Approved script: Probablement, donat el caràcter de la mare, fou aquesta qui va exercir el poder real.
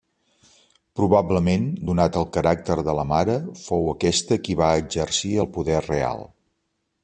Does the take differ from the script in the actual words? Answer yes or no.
no